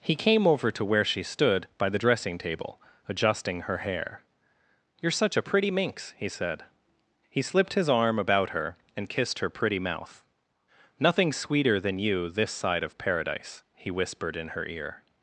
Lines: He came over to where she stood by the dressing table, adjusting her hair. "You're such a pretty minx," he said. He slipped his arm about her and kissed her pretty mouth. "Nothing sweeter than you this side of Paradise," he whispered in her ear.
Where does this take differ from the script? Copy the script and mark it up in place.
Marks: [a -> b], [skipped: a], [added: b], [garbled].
He came over to where she stood by the dressing table, adjusting her hair. "You're such a pretty minx," he said. He slipped his arm about her and kissed her pretty mouth. "Nothing sweeter than you this side of Paradise," he whispered in her ear.